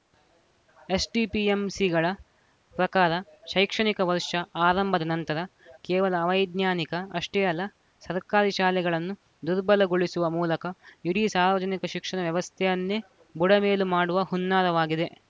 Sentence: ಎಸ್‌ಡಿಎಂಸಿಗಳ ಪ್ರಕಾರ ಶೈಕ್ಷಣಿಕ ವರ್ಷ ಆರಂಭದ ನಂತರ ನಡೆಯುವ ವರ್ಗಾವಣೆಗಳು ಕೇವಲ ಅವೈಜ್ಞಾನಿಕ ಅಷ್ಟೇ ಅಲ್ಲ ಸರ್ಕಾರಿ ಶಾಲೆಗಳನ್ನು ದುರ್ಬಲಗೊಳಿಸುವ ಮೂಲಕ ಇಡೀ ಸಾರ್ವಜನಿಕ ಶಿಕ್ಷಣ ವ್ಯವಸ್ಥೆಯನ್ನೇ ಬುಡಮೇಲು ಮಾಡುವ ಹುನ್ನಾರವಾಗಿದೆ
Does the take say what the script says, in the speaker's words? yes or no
no